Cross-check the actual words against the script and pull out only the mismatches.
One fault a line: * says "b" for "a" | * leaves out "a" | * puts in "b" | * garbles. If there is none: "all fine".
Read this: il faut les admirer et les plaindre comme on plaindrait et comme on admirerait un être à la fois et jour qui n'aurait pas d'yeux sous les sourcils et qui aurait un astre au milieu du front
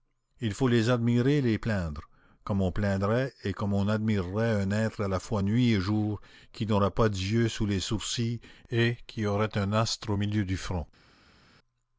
* puts in "nuit"